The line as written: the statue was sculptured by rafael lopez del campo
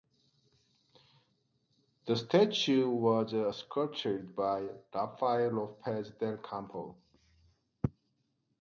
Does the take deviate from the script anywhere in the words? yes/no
no